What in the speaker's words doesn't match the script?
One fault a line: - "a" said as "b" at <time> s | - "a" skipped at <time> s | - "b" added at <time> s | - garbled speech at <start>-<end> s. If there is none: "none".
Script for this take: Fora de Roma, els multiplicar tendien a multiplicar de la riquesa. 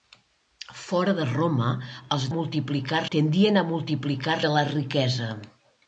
none